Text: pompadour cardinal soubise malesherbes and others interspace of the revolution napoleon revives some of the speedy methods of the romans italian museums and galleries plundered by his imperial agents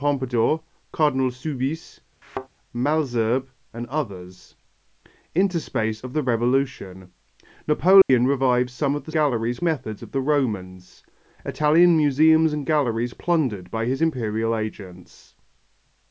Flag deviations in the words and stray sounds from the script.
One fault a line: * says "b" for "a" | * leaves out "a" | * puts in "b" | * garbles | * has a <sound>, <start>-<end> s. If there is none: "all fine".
* has a thud, 2.2-2.5 s
* has a dropout, 8.0-8.1 s
* says "galleries" for "speedy"